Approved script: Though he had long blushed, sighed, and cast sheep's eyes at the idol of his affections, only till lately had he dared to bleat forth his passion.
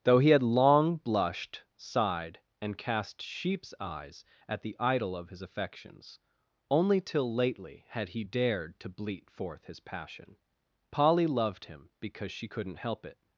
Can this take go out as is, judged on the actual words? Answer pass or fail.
fail